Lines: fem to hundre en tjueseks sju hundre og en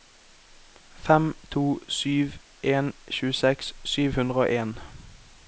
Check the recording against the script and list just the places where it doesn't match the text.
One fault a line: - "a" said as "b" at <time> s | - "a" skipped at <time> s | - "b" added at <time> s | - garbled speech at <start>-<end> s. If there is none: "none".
- "hundre" said as "sju" at 2.0 s